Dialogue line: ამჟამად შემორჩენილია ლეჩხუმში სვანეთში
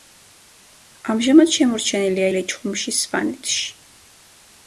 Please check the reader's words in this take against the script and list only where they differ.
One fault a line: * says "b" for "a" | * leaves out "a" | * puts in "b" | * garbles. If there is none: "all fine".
all fine